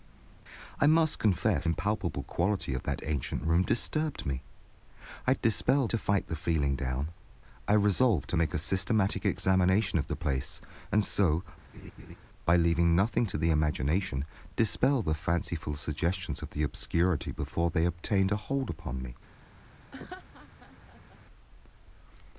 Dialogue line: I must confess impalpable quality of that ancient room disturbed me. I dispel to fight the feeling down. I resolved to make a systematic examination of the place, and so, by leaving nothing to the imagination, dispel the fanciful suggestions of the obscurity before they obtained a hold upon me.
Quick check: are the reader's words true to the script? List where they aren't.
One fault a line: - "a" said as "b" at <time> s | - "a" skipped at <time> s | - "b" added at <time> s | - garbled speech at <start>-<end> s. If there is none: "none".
none